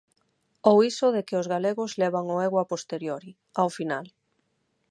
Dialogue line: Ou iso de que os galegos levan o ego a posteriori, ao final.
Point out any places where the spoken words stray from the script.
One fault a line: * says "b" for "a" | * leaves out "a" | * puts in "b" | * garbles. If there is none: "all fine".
all fine